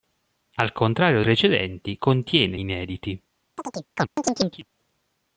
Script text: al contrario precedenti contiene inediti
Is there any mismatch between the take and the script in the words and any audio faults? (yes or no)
yes